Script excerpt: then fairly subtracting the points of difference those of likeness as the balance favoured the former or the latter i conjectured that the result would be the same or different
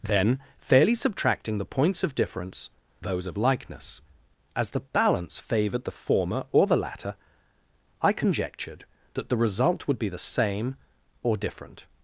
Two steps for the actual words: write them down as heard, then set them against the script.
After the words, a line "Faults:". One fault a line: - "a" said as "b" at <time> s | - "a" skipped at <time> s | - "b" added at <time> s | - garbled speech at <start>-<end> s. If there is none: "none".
then fairly subtracting the points of difference those of likeness as the balance favoured the former or the latter i conjectured that the result would be the same or different
Faults:
none